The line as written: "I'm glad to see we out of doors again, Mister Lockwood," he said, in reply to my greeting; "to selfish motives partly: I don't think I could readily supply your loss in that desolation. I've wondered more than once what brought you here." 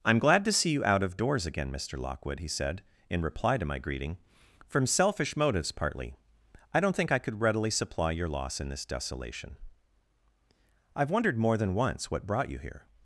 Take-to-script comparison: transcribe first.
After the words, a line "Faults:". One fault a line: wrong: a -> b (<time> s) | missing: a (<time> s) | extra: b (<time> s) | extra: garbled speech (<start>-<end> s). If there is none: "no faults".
"I'm glad to see you out of doors again, Mister Lockwood," he said, in reply to my greeting; "from selfish motives partly: I don't think I could readily supply your loss in this desolation. I've wondered more than once what brought you here."
Faults:
wrong: we -> you (0.7 s)
wrong: to -> from (4.7 s)
wrong: that -> this (8.7 s)